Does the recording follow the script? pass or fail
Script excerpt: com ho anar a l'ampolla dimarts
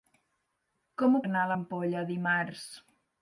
pass